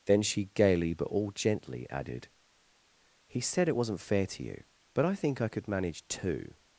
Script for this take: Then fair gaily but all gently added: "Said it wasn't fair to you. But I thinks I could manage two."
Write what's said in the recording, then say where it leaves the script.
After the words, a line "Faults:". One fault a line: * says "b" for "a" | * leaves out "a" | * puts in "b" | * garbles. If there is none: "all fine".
Then she gaily but all gently added: "He said it wasn't fair to you. But I think I could manage two."
Faults:
* says "she" for "fair"
* puts in "He"
* says "think" for "thinks"